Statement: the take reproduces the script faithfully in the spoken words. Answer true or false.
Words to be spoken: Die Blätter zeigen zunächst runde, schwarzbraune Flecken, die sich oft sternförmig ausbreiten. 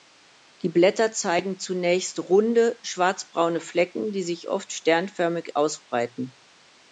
true